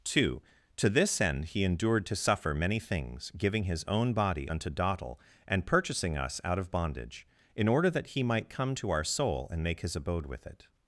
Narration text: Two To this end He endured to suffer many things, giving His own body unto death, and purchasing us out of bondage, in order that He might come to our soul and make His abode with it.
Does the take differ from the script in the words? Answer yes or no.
yes